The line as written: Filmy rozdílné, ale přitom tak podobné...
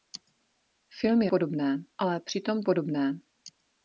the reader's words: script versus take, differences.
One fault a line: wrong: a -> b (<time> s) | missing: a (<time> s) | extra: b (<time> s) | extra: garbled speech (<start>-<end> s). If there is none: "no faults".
wrong: rozdílné -> podobné (1.3 s)
missing: tak (2.6 s)